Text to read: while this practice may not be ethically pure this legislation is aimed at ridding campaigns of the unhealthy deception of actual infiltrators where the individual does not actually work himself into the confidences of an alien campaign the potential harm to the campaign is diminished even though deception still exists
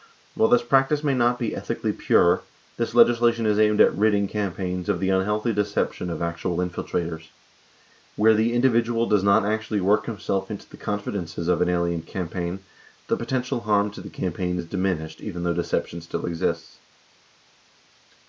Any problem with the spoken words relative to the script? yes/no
no